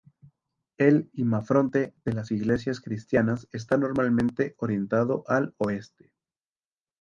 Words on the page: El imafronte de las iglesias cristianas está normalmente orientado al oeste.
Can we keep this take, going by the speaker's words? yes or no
yes